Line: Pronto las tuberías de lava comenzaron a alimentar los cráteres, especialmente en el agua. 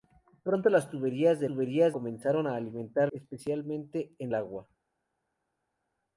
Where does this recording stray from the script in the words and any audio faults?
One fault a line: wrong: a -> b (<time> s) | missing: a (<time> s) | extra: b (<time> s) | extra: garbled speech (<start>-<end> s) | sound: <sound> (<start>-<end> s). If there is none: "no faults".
wrong: lava -> tuberías (1.4 s)
missing: los cráteres (3.1 s)
missing: el (4.3 s)